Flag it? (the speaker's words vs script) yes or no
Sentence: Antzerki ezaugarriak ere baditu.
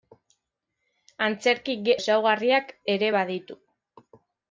no